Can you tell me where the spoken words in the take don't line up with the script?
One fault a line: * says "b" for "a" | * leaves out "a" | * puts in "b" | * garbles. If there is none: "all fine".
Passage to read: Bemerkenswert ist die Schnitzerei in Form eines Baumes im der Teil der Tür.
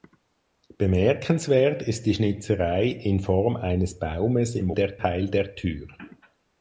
all fine